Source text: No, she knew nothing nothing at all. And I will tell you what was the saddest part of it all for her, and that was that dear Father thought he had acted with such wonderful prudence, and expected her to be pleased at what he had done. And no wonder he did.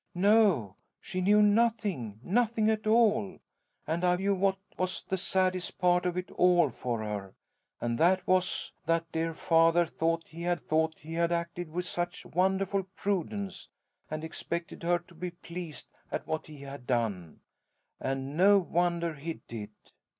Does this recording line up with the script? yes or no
no